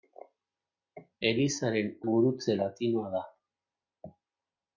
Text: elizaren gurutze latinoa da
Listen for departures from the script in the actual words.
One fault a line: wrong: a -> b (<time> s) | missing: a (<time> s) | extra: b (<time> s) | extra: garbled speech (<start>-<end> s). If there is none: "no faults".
no faults